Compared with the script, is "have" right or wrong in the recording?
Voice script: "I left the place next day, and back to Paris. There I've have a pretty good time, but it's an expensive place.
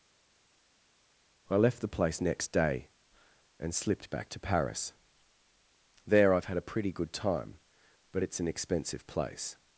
wrong